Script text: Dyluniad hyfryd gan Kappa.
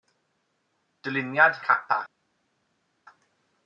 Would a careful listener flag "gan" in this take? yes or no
yes